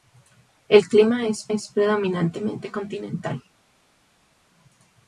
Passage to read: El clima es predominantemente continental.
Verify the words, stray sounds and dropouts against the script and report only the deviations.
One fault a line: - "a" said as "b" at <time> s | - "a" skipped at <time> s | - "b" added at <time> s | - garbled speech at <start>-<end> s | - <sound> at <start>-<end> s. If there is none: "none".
- "es" added at 1.5 s